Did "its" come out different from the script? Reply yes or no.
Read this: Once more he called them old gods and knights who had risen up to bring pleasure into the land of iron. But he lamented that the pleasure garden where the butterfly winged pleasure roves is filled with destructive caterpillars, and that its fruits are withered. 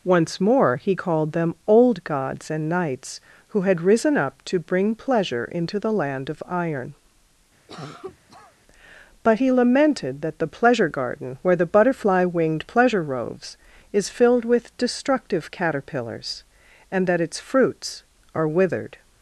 no